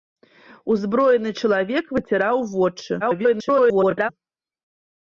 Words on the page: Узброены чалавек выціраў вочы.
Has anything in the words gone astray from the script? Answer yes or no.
yes